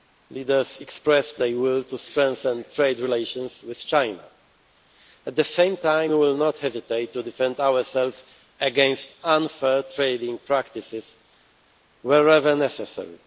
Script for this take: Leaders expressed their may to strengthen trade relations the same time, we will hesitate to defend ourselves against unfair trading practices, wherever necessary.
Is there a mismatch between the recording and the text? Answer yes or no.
yes